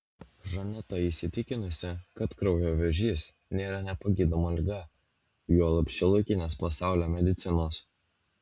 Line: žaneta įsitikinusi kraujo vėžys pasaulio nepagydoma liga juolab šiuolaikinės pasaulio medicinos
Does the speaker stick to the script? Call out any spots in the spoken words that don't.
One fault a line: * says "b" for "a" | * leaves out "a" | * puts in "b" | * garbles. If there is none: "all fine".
* puts in "kad"
* says "nėra" for "pasaulio"